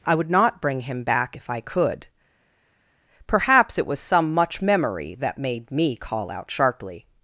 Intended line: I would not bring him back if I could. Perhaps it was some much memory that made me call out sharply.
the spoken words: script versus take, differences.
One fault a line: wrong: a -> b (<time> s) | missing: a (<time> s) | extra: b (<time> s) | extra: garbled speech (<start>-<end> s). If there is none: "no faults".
no faults